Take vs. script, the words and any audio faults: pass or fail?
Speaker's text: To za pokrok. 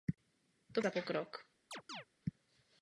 fail